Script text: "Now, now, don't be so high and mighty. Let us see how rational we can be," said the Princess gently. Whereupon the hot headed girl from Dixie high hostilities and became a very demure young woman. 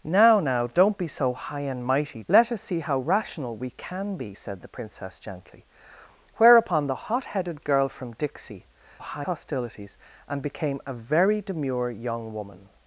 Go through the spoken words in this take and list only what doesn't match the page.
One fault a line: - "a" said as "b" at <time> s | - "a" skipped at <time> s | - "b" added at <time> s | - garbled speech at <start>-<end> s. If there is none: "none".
none